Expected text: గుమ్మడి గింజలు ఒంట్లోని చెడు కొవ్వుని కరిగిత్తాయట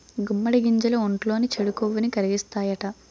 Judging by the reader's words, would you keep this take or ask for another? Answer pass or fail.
pass